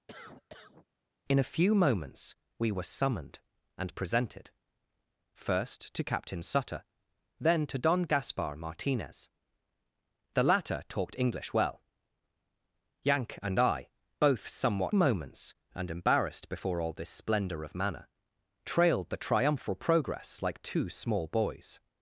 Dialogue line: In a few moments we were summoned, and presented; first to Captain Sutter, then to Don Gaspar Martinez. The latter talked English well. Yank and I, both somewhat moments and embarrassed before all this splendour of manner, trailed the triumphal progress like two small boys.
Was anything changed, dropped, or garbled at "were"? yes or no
no